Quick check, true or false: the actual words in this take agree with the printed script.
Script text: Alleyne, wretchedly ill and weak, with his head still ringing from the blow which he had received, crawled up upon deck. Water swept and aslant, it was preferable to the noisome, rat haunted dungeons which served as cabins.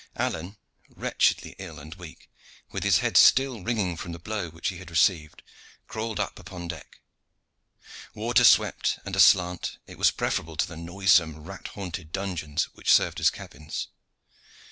true